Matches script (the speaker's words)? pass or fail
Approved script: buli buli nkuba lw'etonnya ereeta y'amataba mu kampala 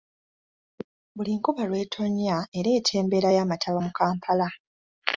fail